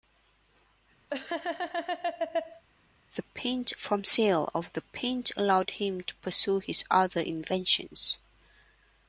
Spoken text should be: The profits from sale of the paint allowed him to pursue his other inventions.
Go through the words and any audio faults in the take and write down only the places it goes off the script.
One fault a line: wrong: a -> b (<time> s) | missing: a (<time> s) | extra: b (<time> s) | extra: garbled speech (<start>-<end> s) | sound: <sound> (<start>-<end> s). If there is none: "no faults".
sound: laugh (1.1-2.6 s)
wrong: profits -> paint (3.2 s)